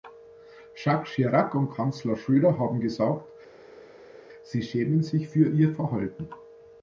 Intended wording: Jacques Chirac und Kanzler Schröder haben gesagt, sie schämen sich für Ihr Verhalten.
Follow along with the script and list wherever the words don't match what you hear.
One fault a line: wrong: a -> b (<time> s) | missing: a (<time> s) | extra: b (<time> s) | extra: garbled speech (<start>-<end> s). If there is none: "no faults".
no faults